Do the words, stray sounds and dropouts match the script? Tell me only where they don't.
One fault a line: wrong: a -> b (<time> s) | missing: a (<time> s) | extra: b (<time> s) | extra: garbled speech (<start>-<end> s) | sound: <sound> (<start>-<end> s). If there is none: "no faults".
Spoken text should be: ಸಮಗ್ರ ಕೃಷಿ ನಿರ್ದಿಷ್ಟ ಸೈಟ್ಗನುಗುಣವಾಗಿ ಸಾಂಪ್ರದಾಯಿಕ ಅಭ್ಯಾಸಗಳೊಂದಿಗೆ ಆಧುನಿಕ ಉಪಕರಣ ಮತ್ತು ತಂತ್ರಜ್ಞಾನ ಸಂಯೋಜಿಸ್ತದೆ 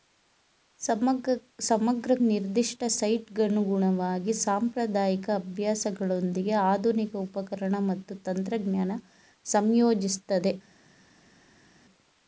missing: ಕೃಷಿ (2.1 s)